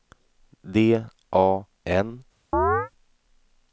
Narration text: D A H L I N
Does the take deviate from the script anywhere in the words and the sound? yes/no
yes